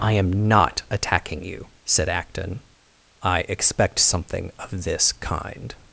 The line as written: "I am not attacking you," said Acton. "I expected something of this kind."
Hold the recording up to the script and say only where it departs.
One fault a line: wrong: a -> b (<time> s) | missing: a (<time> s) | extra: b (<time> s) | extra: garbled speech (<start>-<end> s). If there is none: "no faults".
wrong: expected -> expect (3.5 s)